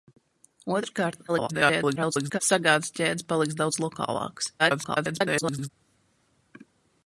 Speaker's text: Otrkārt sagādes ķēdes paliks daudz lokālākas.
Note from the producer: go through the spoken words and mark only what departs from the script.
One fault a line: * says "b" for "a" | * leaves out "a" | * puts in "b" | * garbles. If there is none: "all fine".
* garbles
* garbles